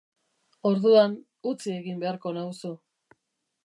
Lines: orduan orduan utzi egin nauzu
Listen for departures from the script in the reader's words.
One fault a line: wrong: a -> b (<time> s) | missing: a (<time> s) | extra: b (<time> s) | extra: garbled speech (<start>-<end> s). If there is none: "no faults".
missing: orduan (1.1 s)
extra: beharko (2.0 s)